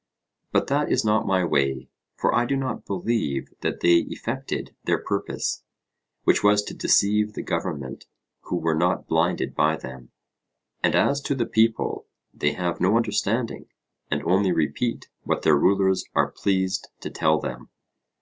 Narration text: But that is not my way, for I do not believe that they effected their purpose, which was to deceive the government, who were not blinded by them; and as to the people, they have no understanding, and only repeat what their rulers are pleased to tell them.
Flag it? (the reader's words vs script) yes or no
no